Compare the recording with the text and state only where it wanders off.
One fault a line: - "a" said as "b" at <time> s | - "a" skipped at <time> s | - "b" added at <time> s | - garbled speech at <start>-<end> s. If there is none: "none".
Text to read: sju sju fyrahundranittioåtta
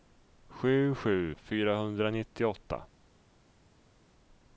none